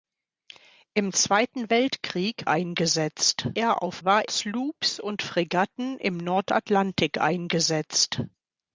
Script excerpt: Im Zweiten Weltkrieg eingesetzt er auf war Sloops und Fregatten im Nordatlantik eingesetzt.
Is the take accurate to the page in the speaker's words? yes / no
yes